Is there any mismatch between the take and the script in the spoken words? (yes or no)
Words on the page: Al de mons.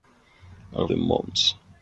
no